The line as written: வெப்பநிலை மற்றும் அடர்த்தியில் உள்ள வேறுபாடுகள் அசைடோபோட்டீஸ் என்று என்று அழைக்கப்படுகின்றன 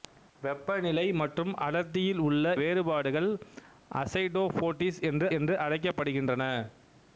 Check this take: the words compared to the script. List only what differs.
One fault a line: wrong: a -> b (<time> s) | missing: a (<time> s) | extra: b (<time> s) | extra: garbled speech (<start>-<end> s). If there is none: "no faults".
no faults